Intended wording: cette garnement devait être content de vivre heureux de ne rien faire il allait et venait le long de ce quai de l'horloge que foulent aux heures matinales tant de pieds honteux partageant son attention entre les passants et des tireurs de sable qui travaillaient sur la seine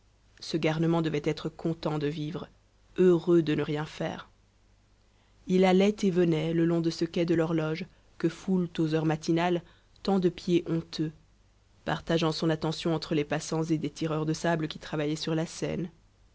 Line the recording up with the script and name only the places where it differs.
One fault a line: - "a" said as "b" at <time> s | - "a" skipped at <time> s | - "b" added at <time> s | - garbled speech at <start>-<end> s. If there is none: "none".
- "cette" said as "ce" at 0.4 s